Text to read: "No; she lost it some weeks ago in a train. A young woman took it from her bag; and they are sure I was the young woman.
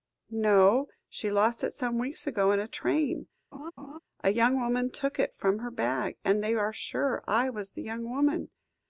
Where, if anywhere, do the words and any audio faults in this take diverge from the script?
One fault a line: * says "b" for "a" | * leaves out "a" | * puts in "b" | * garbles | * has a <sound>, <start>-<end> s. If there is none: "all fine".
* has a laugh, 3.5-4.0 s